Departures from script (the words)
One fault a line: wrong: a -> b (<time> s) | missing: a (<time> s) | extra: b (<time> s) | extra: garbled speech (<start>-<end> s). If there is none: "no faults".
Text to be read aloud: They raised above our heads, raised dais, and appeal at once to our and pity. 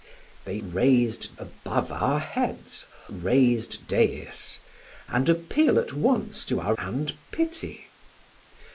no faults